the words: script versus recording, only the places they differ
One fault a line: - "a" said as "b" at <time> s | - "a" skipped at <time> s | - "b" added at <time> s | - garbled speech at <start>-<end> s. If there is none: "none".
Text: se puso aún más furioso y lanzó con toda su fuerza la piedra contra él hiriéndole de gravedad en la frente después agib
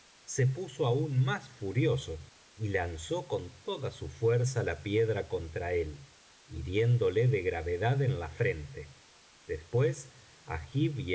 none